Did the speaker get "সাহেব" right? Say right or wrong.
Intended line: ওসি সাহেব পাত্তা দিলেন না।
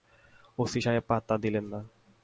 right